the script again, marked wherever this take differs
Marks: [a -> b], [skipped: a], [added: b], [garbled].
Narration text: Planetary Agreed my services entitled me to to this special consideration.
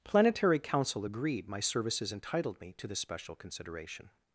Planetary [added: Council] Agreed my services entitled me to [skipped: to] this special consideration.